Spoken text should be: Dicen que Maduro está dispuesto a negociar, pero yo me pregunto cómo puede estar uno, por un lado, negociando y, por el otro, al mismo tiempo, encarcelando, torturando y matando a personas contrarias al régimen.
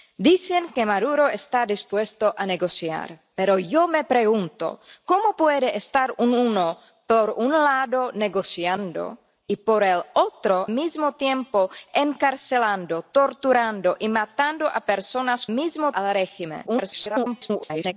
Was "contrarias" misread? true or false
true